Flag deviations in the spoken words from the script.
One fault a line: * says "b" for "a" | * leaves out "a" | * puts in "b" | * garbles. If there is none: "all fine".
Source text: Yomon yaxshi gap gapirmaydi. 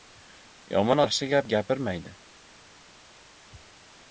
all fine